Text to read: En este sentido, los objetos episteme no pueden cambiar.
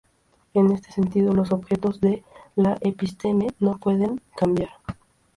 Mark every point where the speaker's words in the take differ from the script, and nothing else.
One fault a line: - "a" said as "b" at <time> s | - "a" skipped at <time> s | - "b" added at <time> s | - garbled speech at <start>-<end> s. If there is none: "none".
- "de la" added at 2.0 s